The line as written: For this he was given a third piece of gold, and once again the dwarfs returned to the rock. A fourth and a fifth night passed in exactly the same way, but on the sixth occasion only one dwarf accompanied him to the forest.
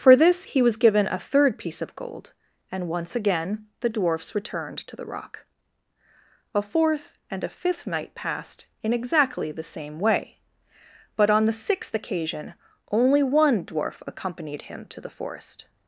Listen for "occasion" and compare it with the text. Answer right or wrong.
right